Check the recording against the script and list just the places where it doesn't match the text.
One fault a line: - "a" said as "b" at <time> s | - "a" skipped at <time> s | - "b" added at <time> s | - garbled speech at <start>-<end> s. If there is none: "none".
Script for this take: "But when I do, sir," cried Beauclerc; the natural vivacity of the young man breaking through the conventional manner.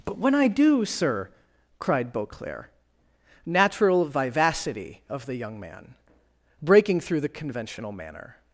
- "the" skipped at 2.7 s